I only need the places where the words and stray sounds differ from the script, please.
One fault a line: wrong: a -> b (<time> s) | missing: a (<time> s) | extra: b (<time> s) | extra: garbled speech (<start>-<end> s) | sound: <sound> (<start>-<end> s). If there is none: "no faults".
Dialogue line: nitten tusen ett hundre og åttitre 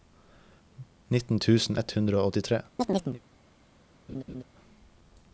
sound: chirp (2.8-3.2 s)
sound: laugh (4.1-4.4 s)